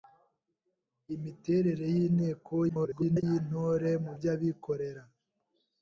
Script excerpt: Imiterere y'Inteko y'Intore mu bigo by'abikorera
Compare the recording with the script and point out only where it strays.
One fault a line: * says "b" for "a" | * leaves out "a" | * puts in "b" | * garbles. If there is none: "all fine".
* garbles
* leaves out "bigo"